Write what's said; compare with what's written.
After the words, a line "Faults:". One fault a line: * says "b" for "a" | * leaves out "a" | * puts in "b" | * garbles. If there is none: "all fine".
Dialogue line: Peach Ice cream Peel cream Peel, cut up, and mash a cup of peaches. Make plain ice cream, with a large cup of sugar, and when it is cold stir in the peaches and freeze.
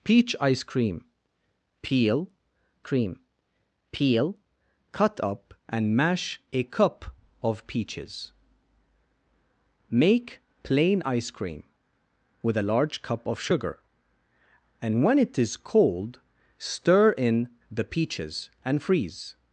Peach Ice cream Peel cream Peel, cut up, and mash a cup of peaches. Make plain ice cream, with a large cup of sugar, and when it is cold stir in the peaches and freeze.
Faults:
all fine